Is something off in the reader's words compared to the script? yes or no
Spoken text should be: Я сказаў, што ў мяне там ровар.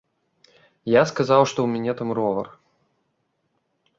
no